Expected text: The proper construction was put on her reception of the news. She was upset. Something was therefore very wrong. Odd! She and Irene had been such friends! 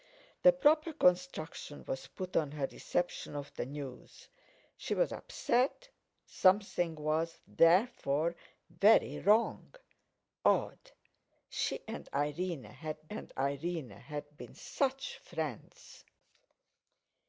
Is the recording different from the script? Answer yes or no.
yes